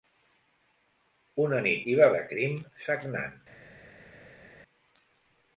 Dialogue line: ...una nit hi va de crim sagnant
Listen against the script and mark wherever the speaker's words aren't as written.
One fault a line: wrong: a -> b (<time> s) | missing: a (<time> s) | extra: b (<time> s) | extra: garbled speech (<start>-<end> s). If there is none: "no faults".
no faults